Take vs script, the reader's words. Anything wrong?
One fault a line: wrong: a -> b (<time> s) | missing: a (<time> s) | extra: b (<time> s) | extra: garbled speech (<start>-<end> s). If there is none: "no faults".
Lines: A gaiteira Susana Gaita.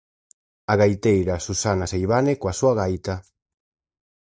extra: Seivane coa súa (1.9 s)